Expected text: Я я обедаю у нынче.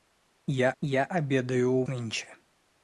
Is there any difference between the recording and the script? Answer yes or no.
no